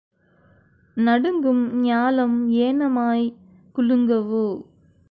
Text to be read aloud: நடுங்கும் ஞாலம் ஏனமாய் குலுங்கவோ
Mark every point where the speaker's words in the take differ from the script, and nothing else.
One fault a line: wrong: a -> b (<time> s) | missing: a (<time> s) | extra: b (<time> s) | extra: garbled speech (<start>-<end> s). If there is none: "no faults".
no faults